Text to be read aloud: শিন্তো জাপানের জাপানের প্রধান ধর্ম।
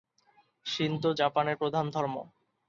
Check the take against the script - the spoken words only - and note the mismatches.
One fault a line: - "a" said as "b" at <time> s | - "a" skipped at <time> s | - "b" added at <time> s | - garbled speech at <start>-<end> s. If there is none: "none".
- "জাপানের" skipped at 1.6 s